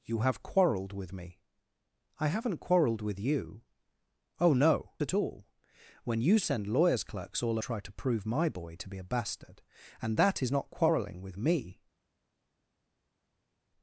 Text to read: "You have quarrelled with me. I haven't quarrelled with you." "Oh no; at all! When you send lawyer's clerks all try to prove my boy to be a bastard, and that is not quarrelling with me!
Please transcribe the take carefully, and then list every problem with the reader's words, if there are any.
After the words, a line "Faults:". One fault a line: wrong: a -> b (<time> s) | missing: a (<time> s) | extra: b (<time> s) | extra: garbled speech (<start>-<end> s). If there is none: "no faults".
"You have quarrelled with me. I haven't quarrelled with you." "Oh no; at all! When you send lawyer's clerks all try to prove my boy to be a bastard, and that is not quarrelling with me!
Faults:
no faults